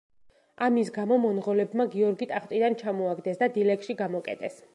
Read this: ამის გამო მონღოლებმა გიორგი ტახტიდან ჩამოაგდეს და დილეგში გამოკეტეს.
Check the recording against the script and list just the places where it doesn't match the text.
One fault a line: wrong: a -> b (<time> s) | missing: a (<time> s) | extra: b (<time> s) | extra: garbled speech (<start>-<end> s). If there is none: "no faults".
no faults